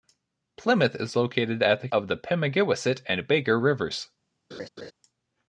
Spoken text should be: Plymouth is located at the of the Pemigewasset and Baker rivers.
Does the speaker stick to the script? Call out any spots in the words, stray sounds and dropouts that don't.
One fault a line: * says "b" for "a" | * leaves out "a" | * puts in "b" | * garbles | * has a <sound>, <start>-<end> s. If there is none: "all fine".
* has a laugh, 4.5-4.9 s